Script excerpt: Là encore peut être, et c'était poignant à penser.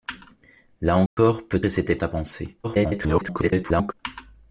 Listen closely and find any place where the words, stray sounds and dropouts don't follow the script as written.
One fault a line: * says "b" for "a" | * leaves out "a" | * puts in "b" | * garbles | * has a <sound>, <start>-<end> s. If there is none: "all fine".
* has a dropout, 1.1-1.2 s
* leaves out "être"
* leaves out "poignant"
* garbles